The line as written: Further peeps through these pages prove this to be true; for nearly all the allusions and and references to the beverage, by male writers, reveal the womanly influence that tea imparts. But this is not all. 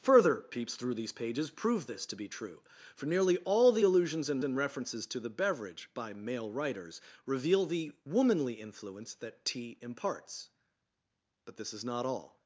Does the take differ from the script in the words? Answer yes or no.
no